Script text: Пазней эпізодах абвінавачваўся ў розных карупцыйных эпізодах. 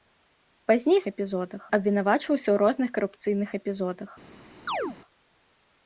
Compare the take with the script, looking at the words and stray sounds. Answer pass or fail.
fail